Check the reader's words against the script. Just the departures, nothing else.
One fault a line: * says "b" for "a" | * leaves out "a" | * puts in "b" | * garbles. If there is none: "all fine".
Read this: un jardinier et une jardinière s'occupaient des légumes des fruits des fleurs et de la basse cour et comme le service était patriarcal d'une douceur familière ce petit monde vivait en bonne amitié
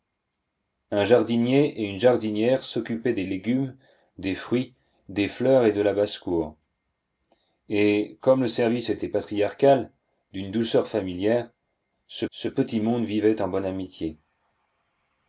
* puts in "ce"